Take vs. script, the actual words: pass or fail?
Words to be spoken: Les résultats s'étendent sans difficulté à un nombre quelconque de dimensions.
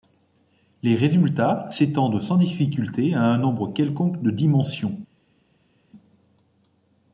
pass